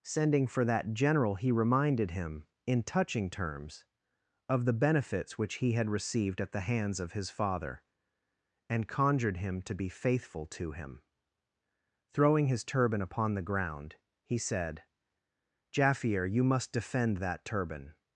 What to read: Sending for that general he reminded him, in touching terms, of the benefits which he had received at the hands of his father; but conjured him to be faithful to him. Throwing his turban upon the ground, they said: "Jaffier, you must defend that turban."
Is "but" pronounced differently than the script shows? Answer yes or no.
yes